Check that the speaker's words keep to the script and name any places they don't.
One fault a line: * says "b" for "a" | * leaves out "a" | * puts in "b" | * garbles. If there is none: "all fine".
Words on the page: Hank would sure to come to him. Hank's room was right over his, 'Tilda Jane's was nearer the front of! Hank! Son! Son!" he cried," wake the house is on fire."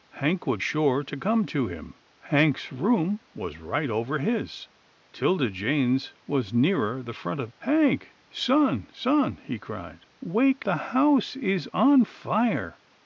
all fine